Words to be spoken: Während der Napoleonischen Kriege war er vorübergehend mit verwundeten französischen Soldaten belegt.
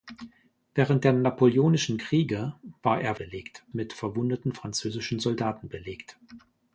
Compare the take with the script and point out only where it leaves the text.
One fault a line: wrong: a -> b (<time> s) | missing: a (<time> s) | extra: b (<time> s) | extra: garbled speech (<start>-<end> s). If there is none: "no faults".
wrong: vorübergehend -> belegt (3.2 s)